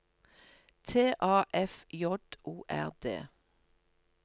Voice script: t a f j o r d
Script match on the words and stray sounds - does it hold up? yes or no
yes